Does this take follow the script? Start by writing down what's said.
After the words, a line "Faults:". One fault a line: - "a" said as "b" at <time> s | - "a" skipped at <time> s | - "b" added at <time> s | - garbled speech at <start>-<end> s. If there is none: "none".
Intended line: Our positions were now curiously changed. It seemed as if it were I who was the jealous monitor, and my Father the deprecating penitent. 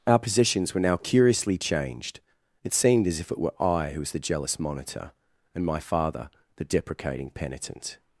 Our positions were now curiously changed. It seemed as if it were I who was the jealous monitor, and my Father the deprecating penitent.
Faults:
none